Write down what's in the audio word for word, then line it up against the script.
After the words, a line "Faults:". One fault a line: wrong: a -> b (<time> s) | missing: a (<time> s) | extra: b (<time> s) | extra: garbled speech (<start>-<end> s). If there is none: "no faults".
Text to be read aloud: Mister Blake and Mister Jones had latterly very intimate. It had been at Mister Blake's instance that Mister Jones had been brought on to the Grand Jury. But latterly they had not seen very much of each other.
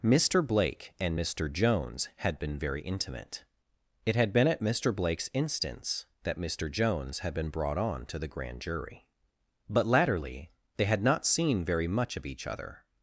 Mister Blake and Mister Jones had been very intimate. It had been at Mister Blake's instance that Mister Jones had been brought on to the Grand Jury. But latterly they had not seen very much of each other.
Faults:
wrong: latterly -> been (2.4 s)